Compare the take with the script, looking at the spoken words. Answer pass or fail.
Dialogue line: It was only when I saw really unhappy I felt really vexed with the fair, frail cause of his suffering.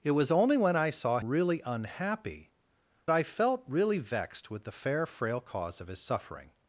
pass